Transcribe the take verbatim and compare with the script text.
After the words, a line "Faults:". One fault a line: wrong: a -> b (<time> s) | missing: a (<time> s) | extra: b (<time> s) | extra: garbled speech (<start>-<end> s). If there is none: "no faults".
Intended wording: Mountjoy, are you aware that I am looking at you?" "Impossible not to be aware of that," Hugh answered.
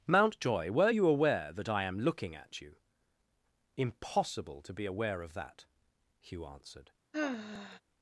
Mountjoy, were you aware that I am looking at you?" "Impossible to be aware of that," Hugh answered.
Faults:
wrong: are -> were (0.7 s)
missing: not (4.6 s)